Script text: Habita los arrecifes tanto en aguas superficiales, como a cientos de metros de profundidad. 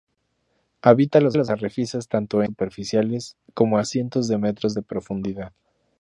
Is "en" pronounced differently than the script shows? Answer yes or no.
yes